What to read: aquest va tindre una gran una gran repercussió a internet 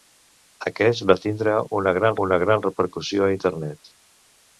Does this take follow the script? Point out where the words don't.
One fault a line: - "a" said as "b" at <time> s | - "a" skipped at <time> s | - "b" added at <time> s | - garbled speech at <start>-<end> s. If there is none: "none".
none